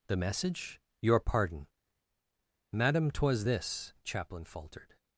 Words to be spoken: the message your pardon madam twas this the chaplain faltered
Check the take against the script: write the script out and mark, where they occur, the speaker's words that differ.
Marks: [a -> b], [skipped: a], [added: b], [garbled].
the message your pardon madam twas this [skipped: the] chaplain faltered